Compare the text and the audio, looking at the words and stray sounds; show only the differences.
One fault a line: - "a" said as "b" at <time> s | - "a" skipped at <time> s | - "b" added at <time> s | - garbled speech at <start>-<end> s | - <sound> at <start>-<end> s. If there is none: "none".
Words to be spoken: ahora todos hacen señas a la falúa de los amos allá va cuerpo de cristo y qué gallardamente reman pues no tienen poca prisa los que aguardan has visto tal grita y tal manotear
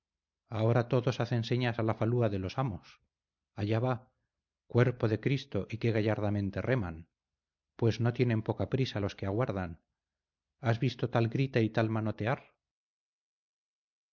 none